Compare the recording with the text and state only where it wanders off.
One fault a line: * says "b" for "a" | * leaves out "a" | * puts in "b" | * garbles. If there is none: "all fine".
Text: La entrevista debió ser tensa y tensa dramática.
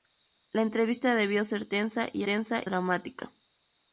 all fine